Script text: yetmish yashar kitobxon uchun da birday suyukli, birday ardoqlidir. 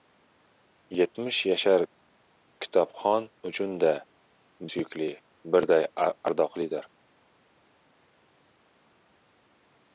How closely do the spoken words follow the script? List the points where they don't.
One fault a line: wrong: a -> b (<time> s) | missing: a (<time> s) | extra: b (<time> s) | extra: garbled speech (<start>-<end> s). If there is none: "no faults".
missing: birday (3.9 s)